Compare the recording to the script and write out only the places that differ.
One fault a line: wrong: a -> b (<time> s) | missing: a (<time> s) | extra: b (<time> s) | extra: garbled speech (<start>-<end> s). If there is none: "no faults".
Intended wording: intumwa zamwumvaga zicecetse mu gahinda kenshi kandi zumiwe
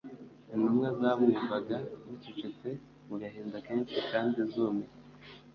no faults